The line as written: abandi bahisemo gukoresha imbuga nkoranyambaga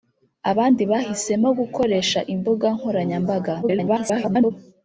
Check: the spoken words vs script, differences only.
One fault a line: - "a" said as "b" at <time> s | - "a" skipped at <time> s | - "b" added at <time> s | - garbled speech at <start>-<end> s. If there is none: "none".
- garbled speech at 3.6-4.5 s